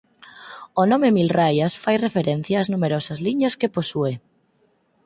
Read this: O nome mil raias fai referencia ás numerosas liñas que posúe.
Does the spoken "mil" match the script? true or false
true